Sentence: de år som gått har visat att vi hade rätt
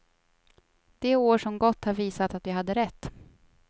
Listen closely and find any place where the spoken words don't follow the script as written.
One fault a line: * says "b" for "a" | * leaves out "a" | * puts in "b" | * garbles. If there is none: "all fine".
all fine